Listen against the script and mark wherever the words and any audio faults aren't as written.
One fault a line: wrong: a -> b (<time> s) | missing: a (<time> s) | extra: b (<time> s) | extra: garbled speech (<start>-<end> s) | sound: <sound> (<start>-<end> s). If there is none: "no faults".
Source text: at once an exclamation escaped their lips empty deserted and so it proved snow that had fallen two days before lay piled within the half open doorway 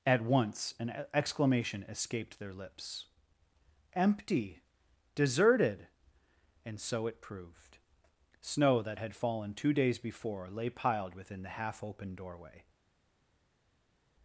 no faults